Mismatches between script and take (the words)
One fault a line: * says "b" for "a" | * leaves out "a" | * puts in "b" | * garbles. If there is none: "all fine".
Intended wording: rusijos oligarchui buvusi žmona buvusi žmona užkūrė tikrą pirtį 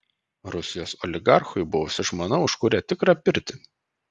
* leaves out "buvusi žmona"